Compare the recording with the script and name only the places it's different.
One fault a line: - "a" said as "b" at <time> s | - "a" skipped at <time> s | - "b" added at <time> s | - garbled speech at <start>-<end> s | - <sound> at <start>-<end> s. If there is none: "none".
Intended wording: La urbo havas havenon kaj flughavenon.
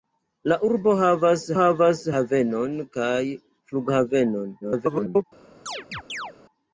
- "havas" added at 1.6 s
- garbled speech at 4.6-5.2 s
- chirp at 5.7-6.3 s